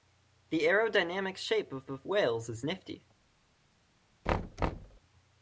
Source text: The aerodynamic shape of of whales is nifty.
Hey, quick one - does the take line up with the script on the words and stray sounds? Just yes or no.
no